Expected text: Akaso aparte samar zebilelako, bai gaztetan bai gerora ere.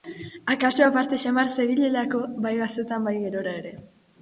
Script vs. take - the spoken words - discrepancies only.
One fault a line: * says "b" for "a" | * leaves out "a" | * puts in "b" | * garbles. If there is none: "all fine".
all fine